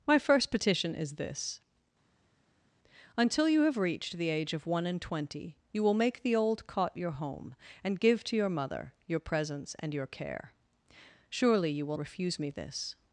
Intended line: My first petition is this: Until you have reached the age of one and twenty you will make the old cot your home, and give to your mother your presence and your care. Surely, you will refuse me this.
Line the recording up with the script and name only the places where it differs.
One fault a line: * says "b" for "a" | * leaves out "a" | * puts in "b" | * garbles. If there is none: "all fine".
all fine